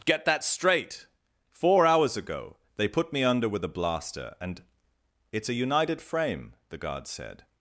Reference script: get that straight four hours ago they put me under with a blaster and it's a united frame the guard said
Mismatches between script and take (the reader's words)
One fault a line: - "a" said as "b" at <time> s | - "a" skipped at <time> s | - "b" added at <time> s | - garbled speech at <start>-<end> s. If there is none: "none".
none